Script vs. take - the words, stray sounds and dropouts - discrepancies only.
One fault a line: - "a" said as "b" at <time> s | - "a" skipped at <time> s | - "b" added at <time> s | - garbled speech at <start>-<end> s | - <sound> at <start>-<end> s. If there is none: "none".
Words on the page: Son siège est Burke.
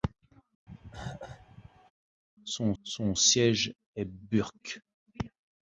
- cough at 0.7-1.9 s
- "son" added at 2.8 s